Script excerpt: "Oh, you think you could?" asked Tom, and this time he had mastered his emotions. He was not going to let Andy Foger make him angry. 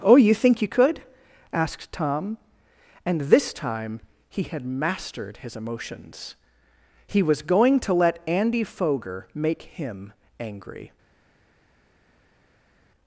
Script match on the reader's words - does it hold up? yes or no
no